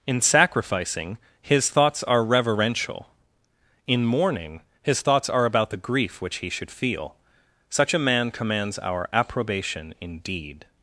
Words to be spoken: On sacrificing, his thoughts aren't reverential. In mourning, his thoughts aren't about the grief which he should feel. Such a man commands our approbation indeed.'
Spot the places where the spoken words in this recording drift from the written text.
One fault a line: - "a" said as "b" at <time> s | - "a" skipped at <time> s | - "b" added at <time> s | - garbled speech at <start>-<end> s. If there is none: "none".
- "On" said as "In" at 0.1 s
- "aren't" said as "are" at 2.0 s
- "aren't" said as "are" at 5.3 s